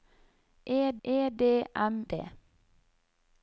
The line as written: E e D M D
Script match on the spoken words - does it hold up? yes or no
yes